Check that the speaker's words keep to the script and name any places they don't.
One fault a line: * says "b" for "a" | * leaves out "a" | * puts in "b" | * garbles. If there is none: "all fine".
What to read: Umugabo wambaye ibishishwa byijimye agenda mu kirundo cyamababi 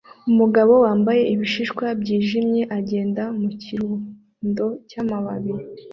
all fine